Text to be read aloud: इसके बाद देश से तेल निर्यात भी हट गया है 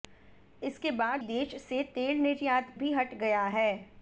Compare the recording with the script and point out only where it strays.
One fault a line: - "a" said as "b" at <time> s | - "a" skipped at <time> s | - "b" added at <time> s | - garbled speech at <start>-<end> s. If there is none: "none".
none